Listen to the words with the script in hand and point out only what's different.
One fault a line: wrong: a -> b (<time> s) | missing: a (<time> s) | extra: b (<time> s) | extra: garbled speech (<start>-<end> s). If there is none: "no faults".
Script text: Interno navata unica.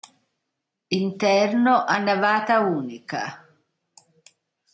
extra: a (1.9 s)